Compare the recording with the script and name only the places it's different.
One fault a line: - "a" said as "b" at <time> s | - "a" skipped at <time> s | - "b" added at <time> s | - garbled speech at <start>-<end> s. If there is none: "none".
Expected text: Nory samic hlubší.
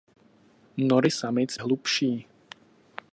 none